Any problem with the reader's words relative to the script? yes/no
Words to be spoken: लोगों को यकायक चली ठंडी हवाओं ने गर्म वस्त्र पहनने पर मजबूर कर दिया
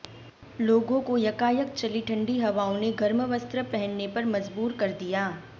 no